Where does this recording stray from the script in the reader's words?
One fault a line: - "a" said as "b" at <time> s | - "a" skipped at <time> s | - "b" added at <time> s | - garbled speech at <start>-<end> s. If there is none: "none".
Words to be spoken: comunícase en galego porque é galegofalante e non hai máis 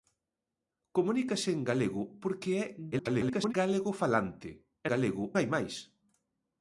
- garbled speech at 2.9-3.5 s
- "non" said as "galego" at 4.9 s